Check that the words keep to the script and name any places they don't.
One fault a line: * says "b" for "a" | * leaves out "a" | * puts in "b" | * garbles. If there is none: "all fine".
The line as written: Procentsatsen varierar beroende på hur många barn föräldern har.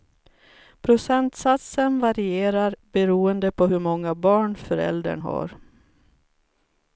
all fine